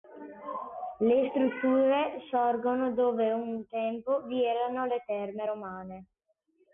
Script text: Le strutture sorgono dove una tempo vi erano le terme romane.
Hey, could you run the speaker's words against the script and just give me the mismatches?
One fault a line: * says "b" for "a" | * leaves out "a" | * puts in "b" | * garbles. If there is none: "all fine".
* says "un" for "una"